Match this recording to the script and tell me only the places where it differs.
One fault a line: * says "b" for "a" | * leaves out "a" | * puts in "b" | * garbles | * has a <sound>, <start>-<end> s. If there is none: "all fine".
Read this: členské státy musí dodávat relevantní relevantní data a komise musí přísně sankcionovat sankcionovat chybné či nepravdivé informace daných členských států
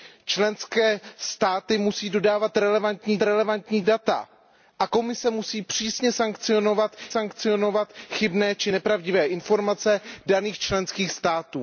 all fine